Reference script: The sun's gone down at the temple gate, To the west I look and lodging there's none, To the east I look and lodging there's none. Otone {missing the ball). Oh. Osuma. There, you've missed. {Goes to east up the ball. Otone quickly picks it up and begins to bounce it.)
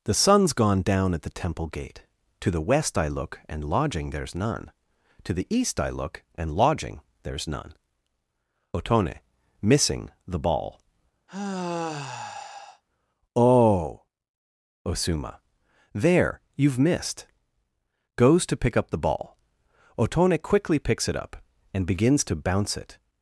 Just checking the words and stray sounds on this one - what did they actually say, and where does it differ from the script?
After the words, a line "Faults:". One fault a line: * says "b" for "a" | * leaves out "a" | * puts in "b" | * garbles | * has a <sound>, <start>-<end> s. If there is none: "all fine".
The sun's gone down at the temple gate, To the west I look and lodging there's none, To the east I look and lodging there's none. Otone {missing the ball). Oh. Osuma. There, you've missed. {Goes to pick up the ball. Otone quickly picks it up and begins to bounce it.)
Faults:
* has a sigh, 11.3-12.8 s
* says "pick" for "east"